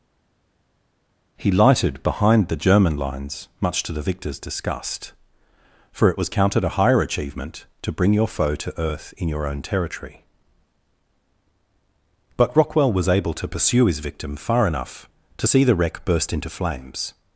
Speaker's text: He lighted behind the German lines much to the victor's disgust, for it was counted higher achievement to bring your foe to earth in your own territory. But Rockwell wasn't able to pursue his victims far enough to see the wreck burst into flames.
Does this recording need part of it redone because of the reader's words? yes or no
yes